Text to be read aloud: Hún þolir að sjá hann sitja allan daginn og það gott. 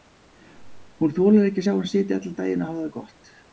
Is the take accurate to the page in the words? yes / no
no